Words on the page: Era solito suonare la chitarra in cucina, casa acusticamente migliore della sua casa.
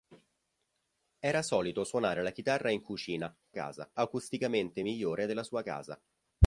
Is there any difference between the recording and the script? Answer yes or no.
no